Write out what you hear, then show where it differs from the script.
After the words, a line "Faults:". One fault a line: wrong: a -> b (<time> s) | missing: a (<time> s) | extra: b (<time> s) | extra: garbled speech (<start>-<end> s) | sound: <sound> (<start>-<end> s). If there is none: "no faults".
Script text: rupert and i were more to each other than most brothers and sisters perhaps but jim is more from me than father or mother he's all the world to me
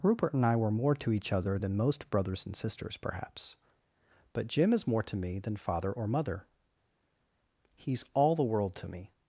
rupert and i were more to each other than most brothers and sisters perhaps but jim is more to me than father or mother he's all the world to me
Faults:
wrong: from -> to (5.0 s)